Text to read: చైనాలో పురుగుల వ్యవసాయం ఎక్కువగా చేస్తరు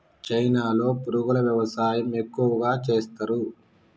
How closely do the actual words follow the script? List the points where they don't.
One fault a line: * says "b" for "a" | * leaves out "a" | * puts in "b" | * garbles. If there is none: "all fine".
all fine